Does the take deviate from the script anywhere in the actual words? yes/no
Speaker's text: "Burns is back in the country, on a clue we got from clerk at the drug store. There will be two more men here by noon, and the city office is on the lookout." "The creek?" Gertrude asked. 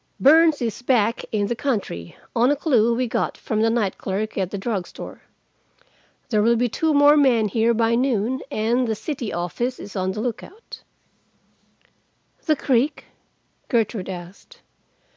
yes